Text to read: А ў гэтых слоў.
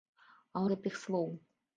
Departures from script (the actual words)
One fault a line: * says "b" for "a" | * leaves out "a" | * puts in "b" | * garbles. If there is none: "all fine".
all fine